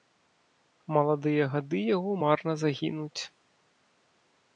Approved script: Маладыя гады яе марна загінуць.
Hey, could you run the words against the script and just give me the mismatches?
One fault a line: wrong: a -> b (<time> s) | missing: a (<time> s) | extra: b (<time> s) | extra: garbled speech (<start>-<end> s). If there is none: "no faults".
wrong: яе -> яго (1.9 s)